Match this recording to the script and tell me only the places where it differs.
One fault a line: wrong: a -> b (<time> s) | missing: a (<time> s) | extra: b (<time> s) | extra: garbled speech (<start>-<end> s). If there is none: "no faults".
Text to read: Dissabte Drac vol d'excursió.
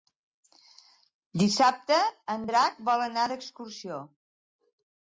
extra: en (2.4 s)
extra: anar (3.1 s)